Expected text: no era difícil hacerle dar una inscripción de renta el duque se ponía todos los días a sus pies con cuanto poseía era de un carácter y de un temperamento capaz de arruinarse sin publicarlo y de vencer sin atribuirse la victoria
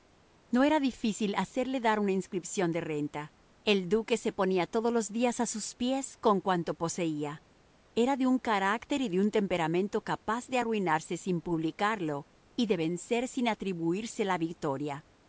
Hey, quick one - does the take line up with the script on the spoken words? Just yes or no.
yes